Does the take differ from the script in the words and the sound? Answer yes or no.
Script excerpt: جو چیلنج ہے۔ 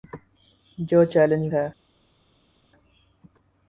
no